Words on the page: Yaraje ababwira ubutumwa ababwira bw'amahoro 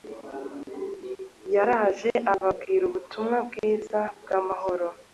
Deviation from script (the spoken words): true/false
true